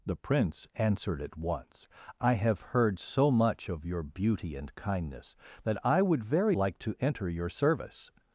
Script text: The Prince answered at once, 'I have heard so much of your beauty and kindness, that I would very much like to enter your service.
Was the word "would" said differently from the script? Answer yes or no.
no